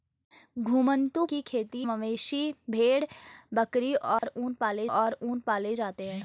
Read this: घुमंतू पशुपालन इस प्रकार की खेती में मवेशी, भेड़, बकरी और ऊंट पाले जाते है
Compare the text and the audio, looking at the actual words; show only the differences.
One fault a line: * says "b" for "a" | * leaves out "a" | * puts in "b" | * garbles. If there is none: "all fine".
* leaves out "पशुपालन इस प्रकार"
* leaves out "में"
* puts in "और ऊंट पाले"